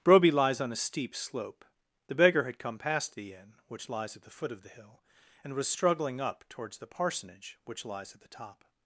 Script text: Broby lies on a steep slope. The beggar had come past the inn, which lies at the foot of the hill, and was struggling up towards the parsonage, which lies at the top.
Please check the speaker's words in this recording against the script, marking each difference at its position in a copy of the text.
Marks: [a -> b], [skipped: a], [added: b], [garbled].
Broby lies on a steep slope. The beggar had come past the inn, which lies at the foot of the hill, and was struggling up towards the parsonage, which lies at the top.